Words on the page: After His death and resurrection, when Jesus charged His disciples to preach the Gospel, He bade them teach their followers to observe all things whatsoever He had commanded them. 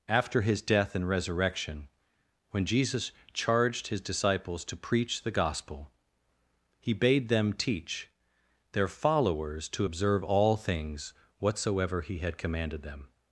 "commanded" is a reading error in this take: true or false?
false